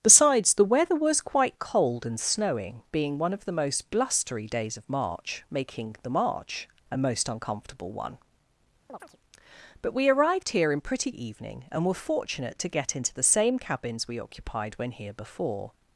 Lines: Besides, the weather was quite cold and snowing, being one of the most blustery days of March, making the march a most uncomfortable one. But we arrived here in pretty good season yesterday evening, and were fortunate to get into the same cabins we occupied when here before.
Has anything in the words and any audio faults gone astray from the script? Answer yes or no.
yes